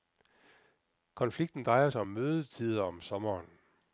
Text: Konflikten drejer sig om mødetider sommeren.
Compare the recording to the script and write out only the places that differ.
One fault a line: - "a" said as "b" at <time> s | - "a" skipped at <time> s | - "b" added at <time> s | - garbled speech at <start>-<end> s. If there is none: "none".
- "om" added at 2.8 s